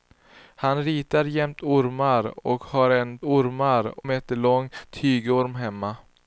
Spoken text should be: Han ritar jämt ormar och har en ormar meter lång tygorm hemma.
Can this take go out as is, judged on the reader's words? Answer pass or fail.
pass